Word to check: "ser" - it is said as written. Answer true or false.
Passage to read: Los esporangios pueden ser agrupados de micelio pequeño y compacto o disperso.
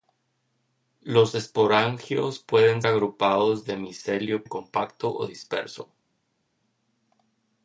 false